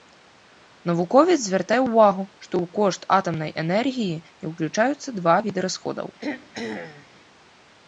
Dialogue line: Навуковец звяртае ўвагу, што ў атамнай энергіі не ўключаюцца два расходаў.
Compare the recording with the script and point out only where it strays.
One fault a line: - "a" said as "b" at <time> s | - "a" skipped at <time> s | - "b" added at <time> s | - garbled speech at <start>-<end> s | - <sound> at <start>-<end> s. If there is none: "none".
- "кошт" added at 2.8 s
- "віды" added at 5.5 s
- throat clearing at 6.2-7.1 s